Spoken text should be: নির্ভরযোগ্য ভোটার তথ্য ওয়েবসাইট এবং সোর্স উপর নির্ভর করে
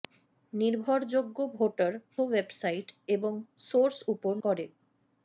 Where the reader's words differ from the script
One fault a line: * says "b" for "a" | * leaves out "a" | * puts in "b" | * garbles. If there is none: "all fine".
* leaves out "তথ্য"
* leaves out "নির্ভর"